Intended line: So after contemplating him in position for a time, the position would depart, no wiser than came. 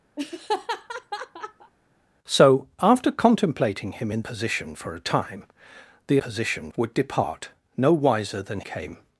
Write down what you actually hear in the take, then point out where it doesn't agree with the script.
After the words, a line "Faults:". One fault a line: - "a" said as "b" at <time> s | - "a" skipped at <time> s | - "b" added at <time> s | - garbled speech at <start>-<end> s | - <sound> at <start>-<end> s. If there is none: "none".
So after contemplating him in position for a time, the position would depart, no wiser than came.
Faults:
- laugh at 0.2-1.7 s